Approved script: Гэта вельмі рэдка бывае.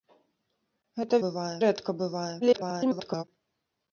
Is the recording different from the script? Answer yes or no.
yes